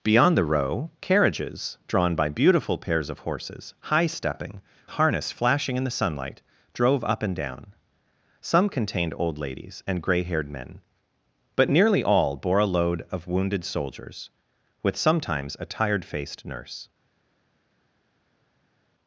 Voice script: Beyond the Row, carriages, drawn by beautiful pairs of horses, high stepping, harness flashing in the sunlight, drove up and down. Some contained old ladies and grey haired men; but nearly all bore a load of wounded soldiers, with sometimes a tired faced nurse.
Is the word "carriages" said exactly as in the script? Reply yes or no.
yes